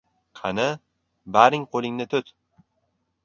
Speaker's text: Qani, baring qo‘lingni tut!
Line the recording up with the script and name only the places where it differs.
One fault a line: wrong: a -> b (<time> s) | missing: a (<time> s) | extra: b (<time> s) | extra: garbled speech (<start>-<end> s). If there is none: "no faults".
no faults